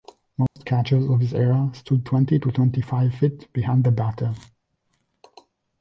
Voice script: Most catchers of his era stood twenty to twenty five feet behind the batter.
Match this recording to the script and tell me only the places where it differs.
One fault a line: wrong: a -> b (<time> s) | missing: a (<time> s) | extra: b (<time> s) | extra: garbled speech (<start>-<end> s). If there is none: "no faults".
no faults